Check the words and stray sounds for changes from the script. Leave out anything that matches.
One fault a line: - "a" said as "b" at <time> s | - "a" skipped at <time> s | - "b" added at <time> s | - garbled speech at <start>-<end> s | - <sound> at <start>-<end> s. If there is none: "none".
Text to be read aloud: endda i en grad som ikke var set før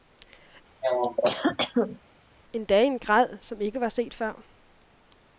- cough at 0.8-2.0 s